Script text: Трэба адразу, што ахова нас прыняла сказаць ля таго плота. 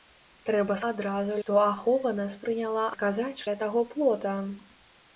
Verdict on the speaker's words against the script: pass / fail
pass